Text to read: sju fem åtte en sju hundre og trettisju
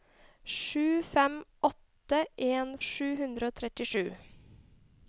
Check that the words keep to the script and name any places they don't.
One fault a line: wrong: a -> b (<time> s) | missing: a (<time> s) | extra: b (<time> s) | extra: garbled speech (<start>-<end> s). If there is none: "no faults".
no faults